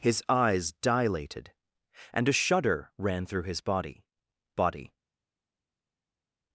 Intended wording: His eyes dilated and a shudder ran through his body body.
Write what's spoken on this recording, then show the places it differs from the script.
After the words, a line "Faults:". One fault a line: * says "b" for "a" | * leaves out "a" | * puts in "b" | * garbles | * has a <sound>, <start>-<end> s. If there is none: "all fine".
His eyes dilated and a shudder ran through his body body.
Faults:
all fine